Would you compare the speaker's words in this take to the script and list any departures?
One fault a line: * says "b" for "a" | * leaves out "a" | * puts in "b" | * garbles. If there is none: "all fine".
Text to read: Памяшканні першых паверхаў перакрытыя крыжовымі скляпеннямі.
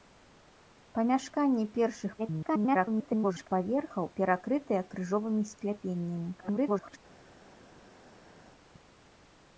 * garbles
* garbles